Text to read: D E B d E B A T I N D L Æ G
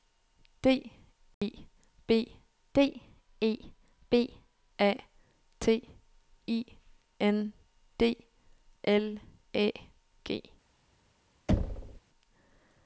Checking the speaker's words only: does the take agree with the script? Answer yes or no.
yes